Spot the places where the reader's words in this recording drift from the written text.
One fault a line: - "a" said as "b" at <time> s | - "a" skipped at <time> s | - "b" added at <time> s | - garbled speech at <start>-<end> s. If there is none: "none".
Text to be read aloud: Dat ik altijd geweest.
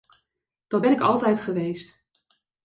- "ben" added at 0.8 s